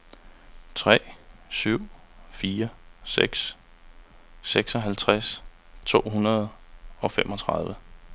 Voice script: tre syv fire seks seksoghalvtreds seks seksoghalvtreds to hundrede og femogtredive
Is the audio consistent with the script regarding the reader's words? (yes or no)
no